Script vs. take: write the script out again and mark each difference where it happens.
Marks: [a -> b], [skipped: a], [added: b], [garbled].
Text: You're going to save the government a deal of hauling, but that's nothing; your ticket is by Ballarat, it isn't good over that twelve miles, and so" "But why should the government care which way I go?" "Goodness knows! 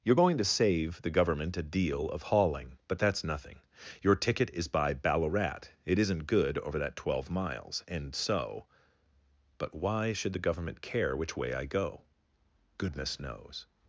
You're going to save the government a deal of hauling, but that's nothing; your ticket is by Ballarat, it isn't good over that twelve miles, and so" "But why should the government care which way I go?" "Goodness knows!